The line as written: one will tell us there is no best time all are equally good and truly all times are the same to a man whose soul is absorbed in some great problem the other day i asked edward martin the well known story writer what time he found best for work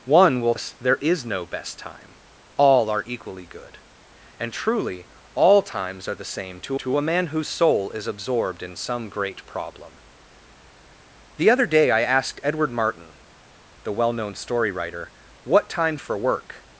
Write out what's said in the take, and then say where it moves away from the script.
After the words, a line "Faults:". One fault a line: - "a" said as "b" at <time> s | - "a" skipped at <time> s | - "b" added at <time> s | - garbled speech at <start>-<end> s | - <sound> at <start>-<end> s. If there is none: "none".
one will us there is no best time all are equally good and truly all times are the same to to a man whose soul is absorbed in some great problem the other day i asked edward martin the well known story writer what time for work
Faults:
- "tell" skipped at 0.6 s
- "to" added at 6.8 s
- "he found best" skipped at 16.0 s